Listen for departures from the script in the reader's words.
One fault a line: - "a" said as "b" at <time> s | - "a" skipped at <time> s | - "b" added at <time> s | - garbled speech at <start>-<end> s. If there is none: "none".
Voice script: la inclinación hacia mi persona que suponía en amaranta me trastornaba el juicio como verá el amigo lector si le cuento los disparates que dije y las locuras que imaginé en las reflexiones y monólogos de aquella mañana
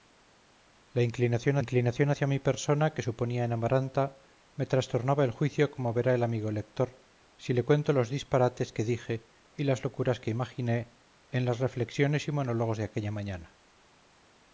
- "inclinación" added at 1.6 s